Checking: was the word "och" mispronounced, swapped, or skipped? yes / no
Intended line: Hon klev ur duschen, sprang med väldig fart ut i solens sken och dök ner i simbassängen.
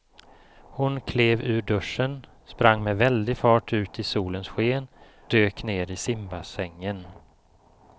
yes